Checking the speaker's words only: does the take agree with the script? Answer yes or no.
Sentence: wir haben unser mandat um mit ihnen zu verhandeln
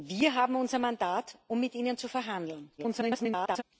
no